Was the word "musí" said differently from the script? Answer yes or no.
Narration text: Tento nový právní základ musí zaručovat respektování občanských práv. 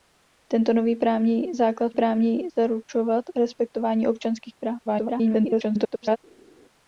yes